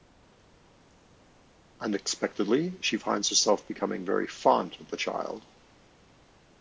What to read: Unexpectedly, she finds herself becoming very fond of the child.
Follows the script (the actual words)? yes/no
yes